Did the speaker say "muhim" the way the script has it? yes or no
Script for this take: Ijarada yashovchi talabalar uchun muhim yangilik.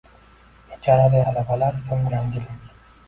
no